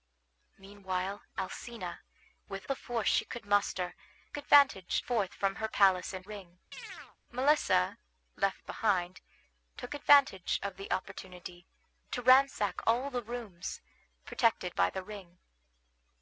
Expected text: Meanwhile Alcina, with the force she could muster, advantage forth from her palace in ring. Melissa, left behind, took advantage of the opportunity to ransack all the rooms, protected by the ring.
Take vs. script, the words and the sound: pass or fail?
fail